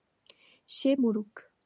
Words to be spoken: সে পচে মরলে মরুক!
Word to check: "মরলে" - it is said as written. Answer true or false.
false